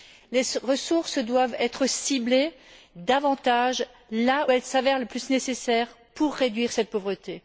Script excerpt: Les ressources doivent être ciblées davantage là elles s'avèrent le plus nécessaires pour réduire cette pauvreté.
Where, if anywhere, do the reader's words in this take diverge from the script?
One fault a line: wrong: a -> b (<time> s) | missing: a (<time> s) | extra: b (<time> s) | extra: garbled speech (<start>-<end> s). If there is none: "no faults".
no faults